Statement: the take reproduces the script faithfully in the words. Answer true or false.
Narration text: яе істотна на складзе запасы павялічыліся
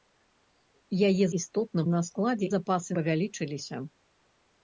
true